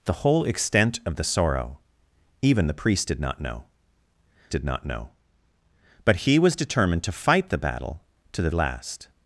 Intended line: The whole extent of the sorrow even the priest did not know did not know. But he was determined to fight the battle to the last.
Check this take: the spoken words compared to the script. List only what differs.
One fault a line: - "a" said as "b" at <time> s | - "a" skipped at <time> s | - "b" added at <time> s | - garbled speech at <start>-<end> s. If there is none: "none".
none